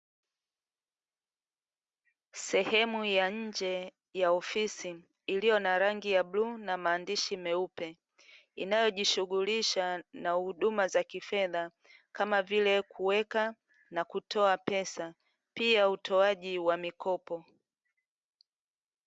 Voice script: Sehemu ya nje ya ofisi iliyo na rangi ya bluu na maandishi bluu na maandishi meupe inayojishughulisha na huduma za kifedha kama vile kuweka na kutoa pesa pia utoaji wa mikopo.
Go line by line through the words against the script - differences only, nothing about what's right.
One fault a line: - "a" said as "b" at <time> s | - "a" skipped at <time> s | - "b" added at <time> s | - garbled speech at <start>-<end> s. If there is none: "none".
- "bluu na maandishi" skipped at 7.4 s